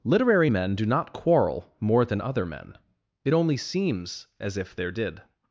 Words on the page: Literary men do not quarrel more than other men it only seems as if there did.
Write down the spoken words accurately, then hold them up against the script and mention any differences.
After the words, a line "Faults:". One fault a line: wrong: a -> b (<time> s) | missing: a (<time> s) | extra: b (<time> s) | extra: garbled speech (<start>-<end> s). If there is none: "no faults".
Literary men do not quarrel more than other men it only seems as if there did.
Faults:
no faults